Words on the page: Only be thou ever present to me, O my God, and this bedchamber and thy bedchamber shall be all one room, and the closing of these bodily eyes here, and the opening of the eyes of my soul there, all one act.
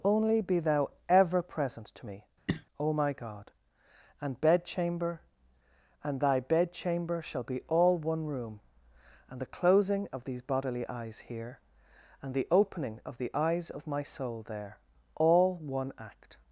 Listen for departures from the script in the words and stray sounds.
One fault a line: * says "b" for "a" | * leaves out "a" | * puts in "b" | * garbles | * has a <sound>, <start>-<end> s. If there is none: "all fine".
* has a cough, 2.5-2.7 s
* leaves out "this"